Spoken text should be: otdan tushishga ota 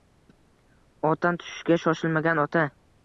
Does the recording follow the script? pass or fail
fail